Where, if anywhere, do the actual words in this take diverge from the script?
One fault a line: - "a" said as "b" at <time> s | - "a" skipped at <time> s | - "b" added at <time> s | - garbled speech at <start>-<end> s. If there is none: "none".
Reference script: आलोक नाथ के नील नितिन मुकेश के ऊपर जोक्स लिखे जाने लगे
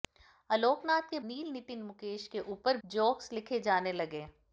none